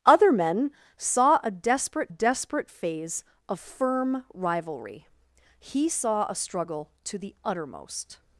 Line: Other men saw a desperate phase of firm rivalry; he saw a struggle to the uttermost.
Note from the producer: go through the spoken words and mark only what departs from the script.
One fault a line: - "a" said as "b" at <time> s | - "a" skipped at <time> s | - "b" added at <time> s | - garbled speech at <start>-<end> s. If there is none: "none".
- "desperate" added at 2.1 s